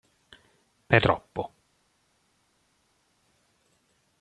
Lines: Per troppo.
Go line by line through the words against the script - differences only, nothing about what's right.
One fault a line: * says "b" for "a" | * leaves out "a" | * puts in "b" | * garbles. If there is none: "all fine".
all fine